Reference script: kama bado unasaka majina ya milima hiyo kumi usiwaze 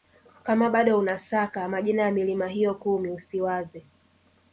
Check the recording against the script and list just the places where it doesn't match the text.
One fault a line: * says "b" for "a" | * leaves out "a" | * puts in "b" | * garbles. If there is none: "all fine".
all fine